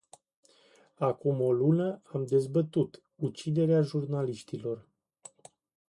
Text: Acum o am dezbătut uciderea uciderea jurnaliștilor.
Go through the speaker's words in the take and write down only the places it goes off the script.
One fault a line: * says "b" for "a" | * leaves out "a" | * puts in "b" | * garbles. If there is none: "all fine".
* puts in "lună"
* leaves out "uciderea"